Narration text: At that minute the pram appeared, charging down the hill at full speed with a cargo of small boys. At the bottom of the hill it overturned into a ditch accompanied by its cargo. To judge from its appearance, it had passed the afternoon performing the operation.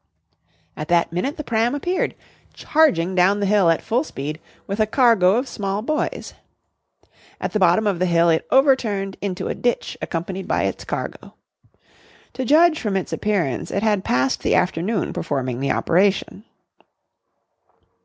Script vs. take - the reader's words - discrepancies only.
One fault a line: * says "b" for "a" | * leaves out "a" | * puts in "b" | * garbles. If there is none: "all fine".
all fine